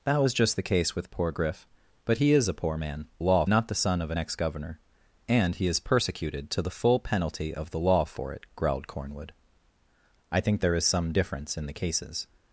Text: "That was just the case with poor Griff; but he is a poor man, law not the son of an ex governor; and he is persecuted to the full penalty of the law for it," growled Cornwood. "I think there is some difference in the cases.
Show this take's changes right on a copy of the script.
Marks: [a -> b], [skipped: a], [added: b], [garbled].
"That was just the case with poor Griff; but he is a poor man, law not the son of an ex governor; and he is persecuted to the full penalty of the law for it," growled Cornwood. "I think there is some difference in the cases.